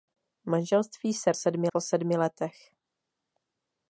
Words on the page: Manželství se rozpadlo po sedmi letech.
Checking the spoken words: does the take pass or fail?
fail